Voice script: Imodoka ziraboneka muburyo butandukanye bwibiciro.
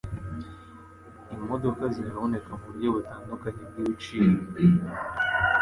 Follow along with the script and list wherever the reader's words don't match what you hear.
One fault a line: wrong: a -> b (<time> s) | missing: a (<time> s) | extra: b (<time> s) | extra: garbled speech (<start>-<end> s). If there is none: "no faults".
no faults